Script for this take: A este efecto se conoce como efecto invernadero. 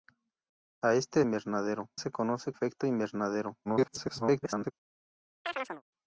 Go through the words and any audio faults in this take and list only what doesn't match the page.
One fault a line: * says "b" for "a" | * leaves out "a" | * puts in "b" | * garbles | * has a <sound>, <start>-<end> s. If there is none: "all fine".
* says "invernadero" for "efecto"
* leaves out "como"
* garbles
* has a chirp, 5.4-5.8 s